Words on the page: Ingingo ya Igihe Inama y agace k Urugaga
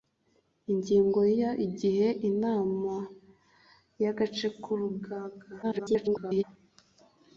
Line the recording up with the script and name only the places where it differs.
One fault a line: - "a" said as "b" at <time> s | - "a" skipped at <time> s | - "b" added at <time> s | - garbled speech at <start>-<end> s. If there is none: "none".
- garbled speech at 5.6-6.4 s